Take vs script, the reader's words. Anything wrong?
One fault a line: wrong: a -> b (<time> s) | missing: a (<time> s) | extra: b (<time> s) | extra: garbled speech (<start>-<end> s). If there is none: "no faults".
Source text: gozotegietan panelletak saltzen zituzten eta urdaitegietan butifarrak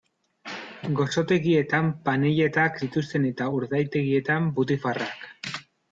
missing: saltzen (2.8 s)